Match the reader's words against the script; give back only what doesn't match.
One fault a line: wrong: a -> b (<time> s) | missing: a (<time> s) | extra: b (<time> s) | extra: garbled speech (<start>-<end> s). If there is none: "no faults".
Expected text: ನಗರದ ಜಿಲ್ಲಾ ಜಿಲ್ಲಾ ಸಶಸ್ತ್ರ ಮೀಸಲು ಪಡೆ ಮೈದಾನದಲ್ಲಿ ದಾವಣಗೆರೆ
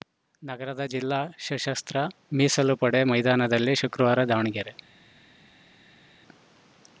missing: ಜಿಲ್ಲಾ (1.2 s)
extra: ಶುಕ್ರವಾರ (3.8 s)